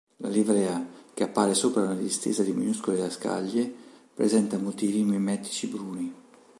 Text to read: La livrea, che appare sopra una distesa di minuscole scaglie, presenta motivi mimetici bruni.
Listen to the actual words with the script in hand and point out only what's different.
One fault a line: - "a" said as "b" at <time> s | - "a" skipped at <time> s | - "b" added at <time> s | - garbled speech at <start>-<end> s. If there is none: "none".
none